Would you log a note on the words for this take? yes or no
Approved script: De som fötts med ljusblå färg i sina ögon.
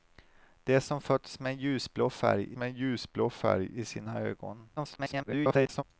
yes